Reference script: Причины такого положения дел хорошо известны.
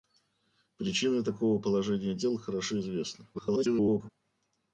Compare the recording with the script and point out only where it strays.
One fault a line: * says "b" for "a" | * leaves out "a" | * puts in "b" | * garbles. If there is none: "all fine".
* garbles